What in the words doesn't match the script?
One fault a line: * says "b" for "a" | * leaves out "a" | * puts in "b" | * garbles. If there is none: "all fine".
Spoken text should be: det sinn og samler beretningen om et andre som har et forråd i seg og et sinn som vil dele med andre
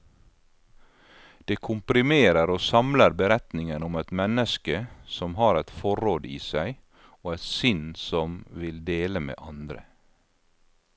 * says "komprimerer" for "sinn"
* says "menneske" for "andre"